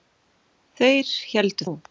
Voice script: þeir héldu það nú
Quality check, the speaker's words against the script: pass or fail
fail